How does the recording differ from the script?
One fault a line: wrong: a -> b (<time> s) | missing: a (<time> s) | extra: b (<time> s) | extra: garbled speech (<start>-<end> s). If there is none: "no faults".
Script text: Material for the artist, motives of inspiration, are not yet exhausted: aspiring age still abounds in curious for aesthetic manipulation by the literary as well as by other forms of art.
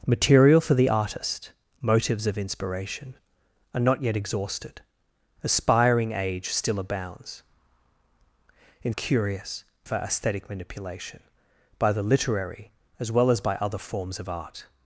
no faults